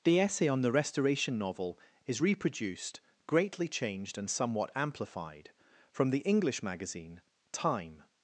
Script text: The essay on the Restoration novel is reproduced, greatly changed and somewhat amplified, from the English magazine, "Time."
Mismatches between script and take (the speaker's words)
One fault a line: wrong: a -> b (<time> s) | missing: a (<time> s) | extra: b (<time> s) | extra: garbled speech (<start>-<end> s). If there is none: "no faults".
no faults